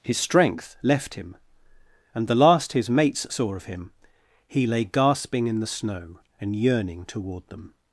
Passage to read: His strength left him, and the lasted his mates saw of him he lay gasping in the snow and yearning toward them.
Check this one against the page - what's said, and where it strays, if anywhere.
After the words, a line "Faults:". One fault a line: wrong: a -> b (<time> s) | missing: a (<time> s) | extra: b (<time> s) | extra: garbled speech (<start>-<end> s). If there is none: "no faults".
His strength left him, and the last his mates saw of him he lay gasping in the snow and yearning toward them.
Faults:
wrong: lasted -> last (2.3 s)